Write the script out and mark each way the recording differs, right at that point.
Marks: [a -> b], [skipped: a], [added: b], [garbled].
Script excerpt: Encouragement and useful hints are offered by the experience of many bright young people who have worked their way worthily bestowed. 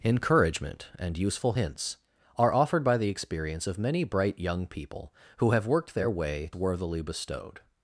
Encouragement and useful hints are offered by the experience of many bright young people who have worked their way worthily bestowed.